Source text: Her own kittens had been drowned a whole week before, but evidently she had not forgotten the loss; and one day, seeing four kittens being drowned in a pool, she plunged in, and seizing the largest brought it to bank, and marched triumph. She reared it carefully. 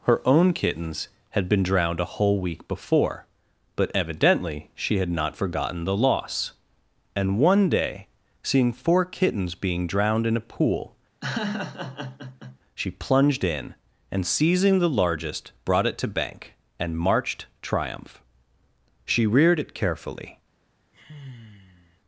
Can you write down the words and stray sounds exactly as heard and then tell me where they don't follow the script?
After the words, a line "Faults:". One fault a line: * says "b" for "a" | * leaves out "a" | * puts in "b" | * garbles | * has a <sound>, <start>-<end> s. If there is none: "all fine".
Her own kittens had been drowned a whole week before, but evidently she had not forgotten the loss; and one day, seeing four kittens being drowned in a pool, she plunged in, and seizing the largest brought it to bank, and marched triumph. She reared it carefully.
Faults:
* has a laugh, 11.2-12.6 s
* has a sigh, 20.9-22.0 s